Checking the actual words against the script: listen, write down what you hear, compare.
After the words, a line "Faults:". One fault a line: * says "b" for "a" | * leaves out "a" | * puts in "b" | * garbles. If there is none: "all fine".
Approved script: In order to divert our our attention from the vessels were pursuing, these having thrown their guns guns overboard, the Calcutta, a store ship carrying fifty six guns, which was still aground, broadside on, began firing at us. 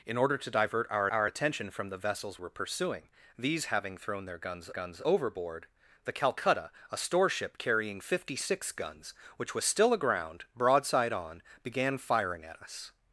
In order to divert our our attention from the vessels were pursuing, these having thrown their guns guns overboard, the Calcutta, a store ship carrying fifty six guns, which was still aground, broadside on, began firing at us.
Faults:
all fine